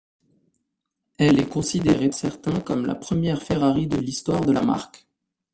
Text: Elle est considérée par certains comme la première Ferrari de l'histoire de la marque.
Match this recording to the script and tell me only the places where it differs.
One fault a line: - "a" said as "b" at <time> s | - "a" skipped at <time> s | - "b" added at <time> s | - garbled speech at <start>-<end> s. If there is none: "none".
- "par" skipped at 2.1 s